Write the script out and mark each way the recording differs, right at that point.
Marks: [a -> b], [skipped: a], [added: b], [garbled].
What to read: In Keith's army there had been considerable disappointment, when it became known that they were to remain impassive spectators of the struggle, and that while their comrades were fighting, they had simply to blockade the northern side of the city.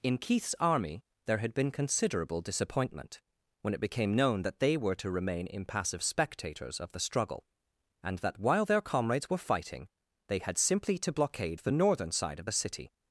In Keith's army there had been considerable disappointment, when it became known that they were to remain impassive spectators of the struggle, and that while their comrades were fighting, they had simply to blockade the northern side of the city.